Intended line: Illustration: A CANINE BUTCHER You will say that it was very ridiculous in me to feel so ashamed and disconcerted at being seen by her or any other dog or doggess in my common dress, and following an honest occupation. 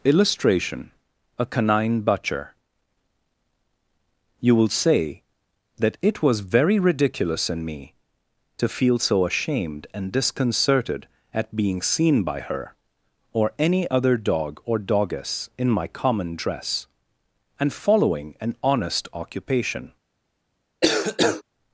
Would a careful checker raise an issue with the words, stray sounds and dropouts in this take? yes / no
yes